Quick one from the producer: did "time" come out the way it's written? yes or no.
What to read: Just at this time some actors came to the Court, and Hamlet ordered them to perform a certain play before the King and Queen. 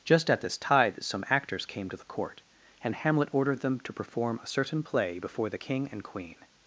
no